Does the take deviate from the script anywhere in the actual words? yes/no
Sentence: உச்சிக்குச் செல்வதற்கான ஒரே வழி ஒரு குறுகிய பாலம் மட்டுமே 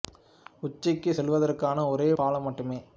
yes